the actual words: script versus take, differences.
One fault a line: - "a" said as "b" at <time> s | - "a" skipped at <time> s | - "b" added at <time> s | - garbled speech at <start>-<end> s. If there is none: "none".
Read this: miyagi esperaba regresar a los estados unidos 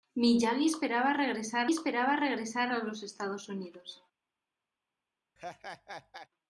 - "esperaba regresar" added at 1.7 s